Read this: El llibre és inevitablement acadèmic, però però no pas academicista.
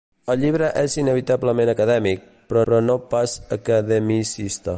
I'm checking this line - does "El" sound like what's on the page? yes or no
yes